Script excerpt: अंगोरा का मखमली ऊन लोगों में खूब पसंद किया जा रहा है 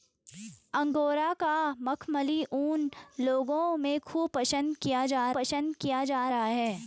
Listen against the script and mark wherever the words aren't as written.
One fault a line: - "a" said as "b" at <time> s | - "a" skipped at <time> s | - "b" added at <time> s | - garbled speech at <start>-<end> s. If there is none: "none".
- "पसंद किया जा" added at 5.3 s